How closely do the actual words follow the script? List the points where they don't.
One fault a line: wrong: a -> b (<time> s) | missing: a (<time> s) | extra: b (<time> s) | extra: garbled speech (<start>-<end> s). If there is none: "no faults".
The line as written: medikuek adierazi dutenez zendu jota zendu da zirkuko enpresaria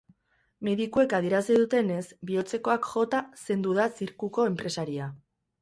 wrong: zendu -> bihotzekoak (2.3 s)